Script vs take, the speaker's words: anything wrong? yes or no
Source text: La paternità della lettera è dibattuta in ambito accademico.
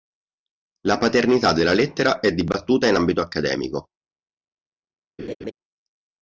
no